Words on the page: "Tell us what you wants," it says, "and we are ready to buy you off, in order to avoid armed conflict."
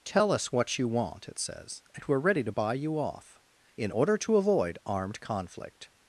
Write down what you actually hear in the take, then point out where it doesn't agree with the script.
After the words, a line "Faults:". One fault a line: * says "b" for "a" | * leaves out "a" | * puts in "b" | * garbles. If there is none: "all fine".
"Tell us what you want," it says, "and we are ready to buy you off, in order to avoid armed conflict."
Faults:
* says "want" for "wants"